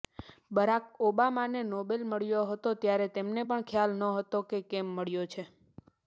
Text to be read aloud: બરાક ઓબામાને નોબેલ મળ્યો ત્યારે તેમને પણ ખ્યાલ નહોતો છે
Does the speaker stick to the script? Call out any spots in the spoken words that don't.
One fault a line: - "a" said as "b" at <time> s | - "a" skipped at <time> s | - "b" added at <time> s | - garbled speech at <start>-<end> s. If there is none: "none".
- "હતો" added at 2.5 s
- "કે કેમ મળ્યો" added at 4.5 s